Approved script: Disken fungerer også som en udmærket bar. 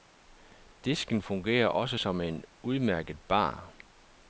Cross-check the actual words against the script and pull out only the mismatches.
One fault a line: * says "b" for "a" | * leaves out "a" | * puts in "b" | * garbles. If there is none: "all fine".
all fine